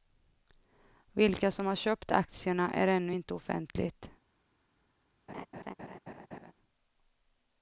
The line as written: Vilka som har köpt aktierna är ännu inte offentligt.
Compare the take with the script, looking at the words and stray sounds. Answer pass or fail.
fail